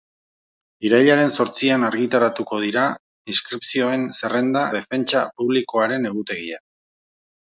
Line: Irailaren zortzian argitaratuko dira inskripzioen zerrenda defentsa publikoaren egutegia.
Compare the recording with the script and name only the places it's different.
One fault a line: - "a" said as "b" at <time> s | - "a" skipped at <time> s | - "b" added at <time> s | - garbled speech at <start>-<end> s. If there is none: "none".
none